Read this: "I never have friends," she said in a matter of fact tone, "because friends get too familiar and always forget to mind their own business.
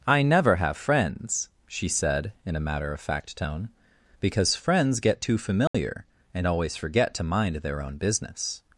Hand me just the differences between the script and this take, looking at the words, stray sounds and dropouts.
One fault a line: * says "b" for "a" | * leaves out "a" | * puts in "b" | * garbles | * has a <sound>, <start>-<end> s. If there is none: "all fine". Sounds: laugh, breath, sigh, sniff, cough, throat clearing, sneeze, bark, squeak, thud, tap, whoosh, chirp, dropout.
* has a dropout, 5.7-5.7 s